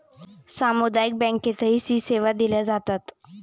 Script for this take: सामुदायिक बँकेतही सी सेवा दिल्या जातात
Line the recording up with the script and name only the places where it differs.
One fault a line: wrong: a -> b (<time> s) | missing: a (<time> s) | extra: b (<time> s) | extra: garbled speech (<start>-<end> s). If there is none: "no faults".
no faults